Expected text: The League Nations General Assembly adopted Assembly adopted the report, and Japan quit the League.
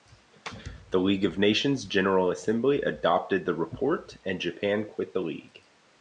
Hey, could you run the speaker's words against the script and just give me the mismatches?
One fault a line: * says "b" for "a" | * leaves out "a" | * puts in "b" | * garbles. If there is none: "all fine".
* puts in "of"
* leaves out "Assembly adopted"